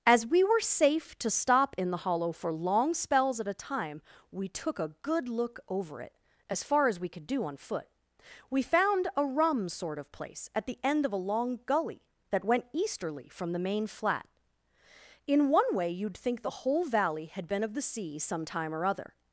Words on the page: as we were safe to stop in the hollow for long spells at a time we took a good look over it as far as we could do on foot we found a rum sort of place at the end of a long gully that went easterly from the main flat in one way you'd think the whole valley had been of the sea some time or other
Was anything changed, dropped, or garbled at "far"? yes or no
no